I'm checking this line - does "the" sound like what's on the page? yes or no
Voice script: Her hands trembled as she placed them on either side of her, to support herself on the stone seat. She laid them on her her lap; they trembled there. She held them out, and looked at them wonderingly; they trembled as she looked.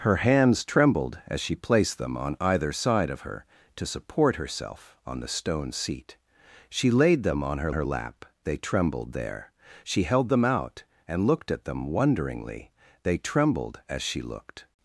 yes